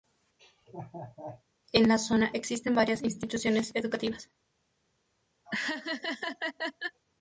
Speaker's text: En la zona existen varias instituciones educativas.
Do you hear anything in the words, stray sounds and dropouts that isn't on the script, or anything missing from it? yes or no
yes